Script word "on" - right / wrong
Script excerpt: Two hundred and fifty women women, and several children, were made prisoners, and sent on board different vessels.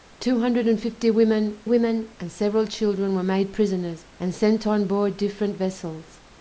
right